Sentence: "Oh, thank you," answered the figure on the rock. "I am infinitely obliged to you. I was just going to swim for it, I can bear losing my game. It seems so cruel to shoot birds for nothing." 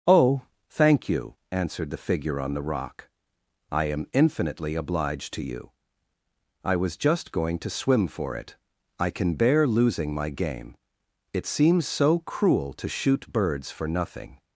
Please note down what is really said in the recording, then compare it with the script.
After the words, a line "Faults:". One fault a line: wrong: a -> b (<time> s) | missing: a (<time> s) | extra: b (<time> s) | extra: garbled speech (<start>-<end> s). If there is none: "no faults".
"Oh, thank you," answered the figure on the rock. "I am infinitely obliged to you. I was just going to swim for it, I can bear losing my game. It seems so cruel to shoot birds for nothing."
Faults:
no faults